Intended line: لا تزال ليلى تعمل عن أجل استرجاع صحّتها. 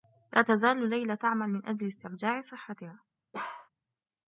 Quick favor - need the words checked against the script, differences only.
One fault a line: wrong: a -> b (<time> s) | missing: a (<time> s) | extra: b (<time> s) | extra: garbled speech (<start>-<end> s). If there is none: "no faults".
wrong: عن -> من (1.5 s)